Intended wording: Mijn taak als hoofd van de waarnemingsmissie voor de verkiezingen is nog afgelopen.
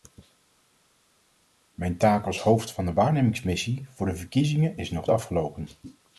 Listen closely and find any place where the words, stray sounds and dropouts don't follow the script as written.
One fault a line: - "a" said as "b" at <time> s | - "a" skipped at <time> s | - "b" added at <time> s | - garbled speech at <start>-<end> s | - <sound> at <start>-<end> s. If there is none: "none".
none